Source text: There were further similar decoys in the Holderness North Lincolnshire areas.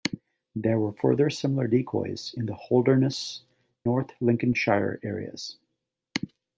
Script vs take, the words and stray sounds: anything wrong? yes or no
no